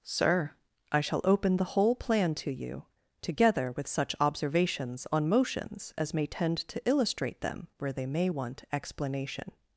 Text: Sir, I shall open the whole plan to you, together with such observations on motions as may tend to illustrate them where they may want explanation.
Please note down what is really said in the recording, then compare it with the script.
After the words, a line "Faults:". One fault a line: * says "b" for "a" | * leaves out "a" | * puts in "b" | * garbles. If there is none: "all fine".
Sir, I shall open the whole plan to you, together with such observations on motions as may tend to illustrate them where they may want explanation.
Faults:
all fine